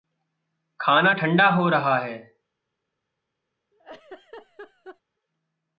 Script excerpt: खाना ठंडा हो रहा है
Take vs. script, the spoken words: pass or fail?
pass